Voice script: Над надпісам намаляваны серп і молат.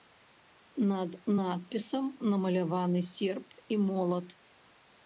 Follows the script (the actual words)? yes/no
yes